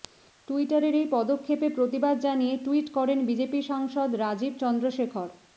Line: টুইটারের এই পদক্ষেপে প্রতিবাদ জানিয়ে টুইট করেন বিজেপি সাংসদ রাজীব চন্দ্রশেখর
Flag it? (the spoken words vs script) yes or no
no